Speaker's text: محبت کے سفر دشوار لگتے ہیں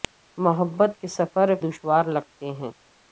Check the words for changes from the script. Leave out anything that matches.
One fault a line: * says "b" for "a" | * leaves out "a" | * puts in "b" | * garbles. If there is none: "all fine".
all fine